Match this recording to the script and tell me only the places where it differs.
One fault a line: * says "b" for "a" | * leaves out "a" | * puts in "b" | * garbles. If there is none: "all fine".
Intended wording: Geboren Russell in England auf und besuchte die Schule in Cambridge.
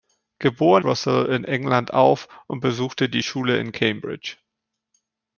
all fine